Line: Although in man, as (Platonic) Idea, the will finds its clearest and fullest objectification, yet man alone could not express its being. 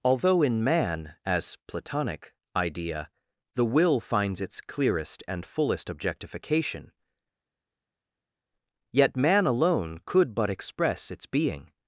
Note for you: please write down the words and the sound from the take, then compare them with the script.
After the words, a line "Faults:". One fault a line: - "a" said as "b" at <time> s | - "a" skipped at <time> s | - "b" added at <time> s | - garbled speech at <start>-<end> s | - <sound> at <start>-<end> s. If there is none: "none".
Although in man, as (Platonic) Idea, the will finds its clearest and fullest objectification, yet man alone could but express its being.
Faults:
- "not" said as "but" at 10.3 s